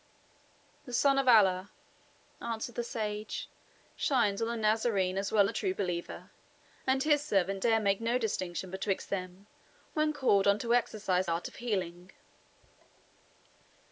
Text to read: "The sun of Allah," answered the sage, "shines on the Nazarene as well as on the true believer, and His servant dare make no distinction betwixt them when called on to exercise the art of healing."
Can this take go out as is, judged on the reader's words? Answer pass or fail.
fail